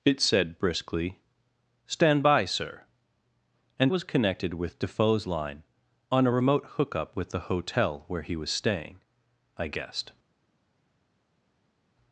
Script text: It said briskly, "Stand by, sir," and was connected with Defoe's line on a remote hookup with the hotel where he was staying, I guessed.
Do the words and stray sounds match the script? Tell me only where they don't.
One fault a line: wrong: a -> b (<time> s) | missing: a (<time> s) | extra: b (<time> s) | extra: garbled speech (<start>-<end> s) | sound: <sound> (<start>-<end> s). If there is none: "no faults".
no faults